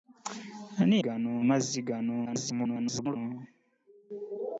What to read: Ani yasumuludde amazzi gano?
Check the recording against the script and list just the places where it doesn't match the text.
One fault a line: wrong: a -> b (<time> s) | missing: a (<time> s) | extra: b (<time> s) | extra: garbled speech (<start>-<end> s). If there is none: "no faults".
wrong: yasumuludde -> gano (1.0 s)
extra: garbled speech (2.3-3.2 s)